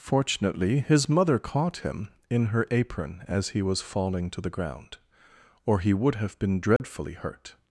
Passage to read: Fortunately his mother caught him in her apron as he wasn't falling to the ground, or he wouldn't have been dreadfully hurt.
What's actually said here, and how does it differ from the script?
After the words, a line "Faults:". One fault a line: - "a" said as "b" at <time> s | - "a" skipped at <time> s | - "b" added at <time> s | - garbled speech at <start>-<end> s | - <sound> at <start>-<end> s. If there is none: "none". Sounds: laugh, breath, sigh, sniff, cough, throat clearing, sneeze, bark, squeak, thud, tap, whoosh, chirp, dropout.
Fortunately his mother caught him in her apron as he was falling to the ground, or he would have been dreadfully hurt.
Faults:
- "wasn't" said as "was" at 3.6 s
- "wouldn't" said as "would" at 5.9 s
- dropout at 6.8-6.8 s